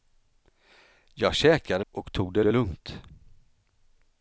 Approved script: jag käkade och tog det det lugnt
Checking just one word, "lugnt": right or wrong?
right